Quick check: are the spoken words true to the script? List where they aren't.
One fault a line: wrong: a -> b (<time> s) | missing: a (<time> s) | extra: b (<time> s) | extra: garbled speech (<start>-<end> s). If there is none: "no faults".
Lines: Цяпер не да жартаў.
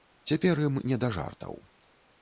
extra: ім (0.7 s)